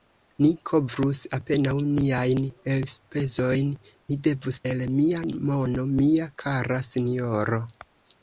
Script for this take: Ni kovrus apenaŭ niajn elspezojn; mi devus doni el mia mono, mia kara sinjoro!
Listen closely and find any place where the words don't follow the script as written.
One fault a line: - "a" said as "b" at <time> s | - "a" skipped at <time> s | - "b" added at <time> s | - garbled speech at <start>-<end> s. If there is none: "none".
- "doni" skipped at 4.6 s